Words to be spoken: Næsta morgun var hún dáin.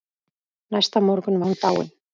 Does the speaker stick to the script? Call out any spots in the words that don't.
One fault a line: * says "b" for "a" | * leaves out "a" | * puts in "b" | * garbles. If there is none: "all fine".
* leaves out "var"